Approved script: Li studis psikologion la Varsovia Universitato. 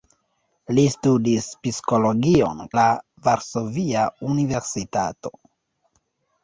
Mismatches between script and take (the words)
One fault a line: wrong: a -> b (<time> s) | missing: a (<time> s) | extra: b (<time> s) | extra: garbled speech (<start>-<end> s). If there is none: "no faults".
no faults